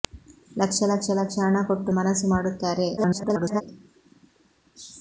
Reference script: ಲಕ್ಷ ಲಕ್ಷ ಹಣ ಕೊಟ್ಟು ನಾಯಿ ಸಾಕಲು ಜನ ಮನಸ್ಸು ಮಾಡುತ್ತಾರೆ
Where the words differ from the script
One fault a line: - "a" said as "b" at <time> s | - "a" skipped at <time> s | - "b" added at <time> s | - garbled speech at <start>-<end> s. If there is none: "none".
- "ಲಕ್ಷ" added at 1.1 s
- "ನಾಯಿ ಸಾಕಲು ಜನ" skipped at 1.9 s
- garbled speech at 3.0-3.6 s